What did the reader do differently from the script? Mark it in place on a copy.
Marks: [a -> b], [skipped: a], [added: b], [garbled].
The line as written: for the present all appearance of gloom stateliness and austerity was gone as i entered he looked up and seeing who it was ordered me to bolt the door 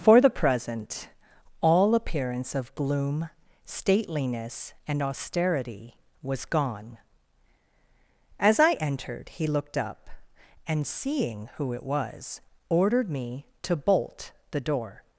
for the present all appearance of gloom stateliness and austerity was gone as i entered he looked up and seeing who it was ordered me to bolt the door